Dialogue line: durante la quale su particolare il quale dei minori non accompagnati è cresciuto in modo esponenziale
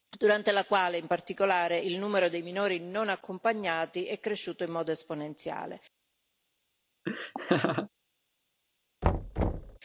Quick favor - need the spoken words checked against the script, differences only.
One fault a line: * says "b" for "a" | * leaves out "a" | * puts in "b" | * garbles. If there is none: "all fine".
* says "in" for "su"
* says "numero" for "quale"